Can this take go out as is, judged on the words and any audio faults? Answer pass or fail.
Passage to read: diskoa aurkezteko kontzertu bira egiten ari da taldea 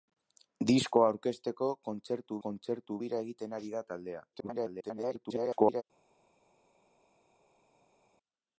fail